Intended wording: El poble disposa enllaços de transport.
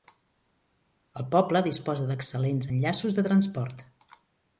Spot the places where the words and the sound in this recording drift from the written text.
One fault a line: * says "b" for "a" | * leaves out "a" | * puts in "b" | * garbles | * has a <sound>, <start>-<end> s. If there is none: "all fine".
* puts in "d'excel·lents"